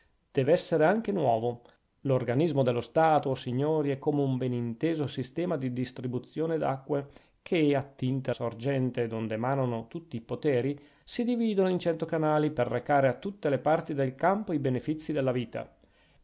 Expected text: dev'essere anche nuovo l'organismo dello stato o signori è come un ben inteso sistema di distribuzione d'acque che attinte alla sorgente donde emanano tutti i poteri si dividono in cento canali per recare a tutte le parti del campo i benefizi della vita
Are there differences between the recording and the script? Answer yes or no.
yes